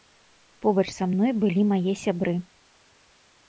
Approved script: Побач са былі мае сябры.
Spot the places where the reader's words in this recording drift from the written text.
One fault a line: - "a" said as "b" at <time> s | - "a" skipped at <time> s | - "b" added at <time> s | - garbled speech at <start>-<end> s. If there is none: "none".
- "мной" added at 1.1 s